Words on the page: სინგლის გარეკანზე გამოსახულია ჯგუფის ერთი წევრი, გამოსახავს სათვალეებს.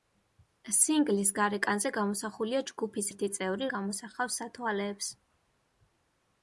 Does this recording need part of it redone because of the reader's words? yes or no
no